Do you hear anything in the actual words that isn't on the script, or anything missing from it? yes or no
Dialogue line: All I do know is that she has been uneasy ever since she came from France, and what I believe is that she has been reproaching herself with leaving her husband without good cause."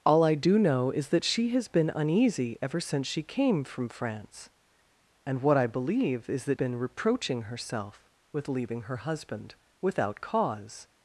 yes